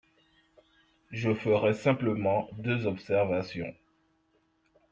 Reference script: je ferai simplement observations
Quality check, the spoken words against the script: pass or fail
fail